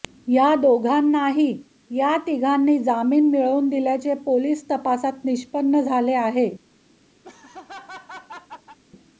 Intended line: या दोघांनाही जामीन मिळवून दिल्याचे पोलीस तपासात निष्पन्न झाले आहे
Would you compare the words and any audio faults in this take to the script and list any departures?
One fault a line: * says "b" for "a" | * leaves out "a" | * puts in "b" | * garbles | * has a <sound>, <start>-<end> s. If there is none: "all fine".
* puts in "या तिघांनी"
* has a laugh, 7.2-8.8 s